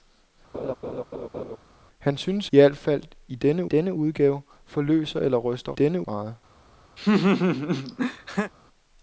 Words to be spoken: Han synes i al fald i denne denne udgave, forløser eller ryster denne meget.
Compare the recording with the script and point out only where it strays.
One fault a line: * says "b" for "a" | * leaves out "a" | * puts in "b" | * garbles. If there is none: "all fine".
all fine